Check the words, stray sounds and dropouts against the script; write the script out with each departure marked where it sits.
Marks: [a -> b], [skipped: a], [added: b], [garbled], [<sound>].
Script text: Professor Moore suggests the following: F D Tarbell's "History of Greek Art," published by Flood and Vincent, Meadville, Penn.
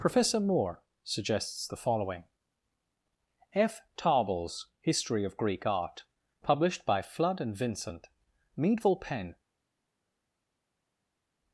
Professor Moore suggests the following: F [skipped: D] Tarbell's "History of Greek Art," published by Flood and Vincent, Meadville, Penn.